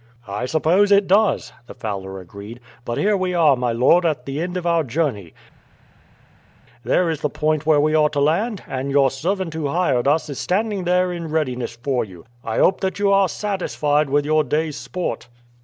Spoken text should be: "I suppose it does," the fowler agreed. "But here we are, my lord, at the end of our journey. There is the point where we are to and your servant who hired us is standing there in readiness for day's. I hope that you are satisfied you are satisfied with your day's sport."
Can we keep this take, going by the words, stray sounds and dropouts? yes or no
no